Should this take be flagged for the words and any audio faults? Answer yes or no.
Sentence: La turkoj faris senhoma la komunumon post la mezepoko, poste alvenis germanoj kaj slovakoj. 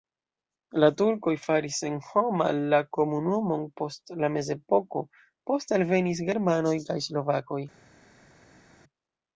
no